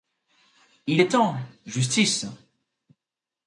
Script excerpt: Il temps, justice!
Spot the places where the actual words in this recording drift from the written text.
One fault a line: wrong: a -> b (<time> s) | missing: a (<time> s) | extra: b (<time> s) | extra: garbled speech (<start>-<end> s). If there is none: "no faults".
extra: est (1.0 s)